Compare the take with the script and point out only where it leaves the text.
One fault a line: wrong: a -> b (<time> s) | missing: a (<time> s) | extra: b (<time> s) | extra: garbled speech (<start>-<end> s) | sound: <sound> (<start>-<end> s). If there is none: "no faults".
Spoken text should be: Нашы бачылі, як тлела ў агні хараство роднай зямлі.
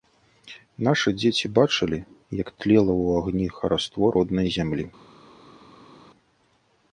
extra: дзеці (1.2 s)